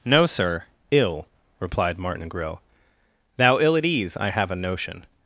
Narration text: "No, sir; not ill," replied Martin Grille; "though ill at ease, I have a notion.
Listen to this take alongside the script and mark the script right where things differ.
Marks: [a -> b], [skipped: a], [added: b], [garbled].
"No, sir; [skipped: not] ill," replied Martin Grille; ["though -> thou] ill at ease, I have a notion.